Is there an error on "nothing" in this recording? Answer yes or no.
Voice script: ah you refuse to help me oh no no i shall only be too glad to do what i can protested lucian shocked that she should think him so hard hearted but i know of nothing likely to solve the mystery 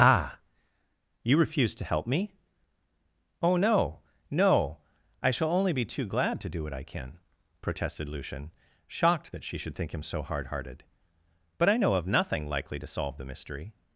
no